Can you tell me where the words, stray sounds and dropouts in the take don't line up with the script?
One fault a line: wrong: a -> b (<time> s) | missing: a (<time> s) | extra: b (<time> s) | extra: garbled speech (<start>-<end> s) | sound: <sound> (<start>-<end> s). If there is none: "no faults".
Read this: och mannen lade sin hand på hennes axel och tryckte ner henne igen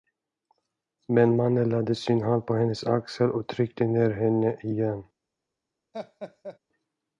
wrong: och -> men (1.1 s)
sound: laugh (5.9-6.6 s)